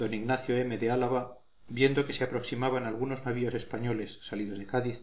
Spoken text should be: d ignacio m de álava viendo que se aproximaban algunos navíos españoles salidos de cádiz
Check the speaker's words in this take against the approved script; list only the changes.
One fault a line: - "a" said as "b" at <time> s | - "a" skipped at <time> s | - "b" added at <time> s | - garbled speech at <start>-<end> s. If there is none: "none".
none